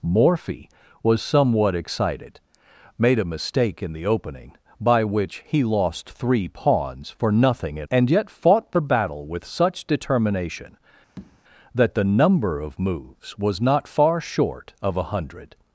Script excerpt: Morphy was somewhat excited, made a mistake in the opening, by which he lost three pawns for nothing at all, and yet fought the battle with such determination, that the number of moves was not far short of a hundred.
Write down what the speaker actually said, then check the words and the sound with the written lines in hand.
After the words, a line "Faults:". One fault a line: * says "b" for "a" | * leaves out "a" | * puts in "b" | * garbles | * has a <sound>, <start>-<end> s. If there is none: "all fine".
Morphy was somewhat excited, made a mistake in the opening, by which he lost three pawns for nothing at and yet fought the battle with such determination, that the number of moves was not far short of a hundred.
Faults:
* leaves out "all"
* has a tap, 11.2-11.4 s